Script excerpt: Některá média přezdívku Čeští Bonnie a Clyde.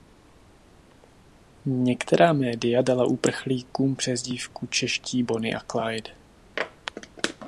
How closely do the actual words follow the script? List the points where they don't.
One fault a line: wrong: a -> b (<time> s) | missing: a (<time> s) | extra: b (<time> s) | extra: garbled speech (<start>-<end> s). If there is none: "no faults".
extra: dala uprchlíkům (2.8 s)